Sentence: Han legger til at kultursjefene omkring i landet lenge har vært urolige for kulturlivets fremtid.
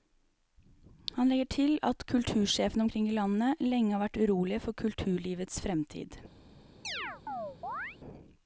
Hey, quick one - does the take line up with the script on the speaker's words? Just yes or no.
yes